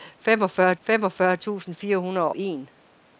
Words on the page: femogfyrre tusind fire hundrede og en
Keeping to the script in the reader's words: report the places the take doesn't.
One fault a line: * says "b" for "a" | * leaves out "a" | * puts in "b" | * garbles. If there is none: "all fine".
* puts in "femogfyrre"
* leaves out "og"